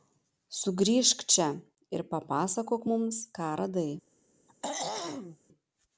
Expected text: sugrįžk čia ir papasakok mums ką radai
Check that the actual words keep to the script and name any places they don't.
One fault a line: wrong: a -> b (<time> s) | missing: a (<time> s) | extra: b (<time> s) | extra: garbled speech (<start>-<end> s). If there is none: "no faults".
no faults